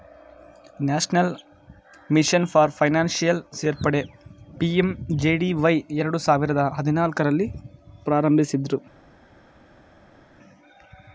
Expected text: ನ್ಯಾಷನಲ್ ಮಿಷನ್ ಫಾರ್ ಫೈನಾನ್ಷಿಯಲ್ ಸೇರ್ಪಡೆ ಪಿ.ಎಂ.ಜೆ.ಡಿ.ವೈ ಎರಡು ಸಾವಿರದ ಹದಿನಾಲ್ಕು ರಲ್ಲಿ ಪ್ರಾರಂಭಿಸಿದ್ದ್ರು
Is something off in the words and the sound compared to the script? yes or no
no